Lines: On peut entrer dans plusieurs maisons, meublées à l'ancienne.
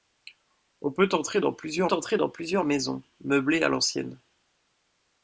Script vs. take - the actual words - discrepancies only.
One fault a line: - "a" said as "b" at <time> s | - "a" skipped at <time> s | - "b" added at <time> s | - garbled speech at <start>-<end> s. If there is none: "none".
- "entrer dans plusieurs" added at 1.9 s